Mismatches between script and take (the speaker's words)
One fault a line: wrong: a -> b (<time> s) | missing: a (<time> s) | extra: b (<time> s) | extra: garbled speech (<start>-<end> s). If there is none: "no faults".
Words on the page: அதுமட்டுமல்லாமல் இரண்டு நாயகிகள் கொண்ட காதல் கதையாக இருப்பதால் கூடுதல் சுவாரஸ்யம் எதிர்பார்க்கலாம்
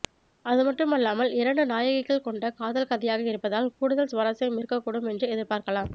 extra: இருக்கக்கூடும் என்று (4.6 s)